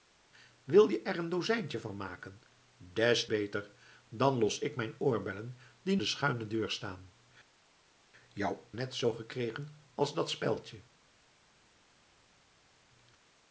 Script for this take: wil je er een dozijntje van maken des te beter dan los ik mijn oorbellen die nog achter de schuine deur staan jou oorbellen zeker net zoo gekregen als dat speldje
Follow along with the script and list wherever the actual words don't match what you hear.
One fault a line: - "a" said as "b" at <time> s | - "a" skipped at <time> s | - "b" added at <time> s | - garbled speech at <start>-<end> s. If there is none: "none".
- "te" skipped at 3.3 s
- "nog achter" skipped at 6.0 s
- "oorbellen zeker" skipped at 8.6 s